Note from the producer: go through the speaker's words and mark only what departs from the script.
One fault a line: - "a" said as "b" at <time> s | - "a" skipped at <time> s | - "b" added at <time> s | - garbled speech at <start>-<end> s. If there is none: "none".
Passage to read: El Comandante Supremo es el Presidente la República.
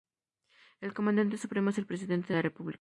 none